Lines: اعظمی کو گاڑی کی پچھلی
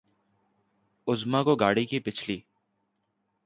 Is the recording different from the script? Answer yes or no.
no